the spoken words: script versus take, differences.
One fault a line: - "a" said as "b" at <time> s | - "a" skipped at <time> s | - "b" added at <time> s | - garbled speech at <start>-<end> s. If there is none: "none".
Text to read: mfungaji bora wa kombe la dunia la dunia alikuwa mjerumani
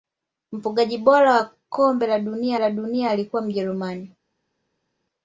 none